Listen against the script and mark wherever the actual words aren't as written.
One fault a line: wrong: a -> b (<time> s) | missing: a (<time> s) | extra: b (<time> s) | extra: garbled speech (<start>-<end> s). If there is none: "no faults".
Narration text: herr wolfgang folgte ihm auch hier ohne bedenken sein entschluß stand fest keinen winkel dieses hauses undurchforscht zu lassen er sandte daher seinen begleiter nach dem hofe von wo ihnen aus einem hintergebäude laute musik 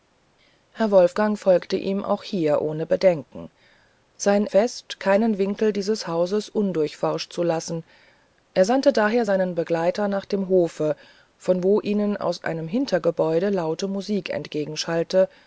missing: entschluß stand (4.5 s)